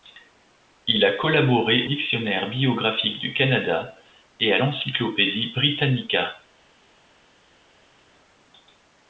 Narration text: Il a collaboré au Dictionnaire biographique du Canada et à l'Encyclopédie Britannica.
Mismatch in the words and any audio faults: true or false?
true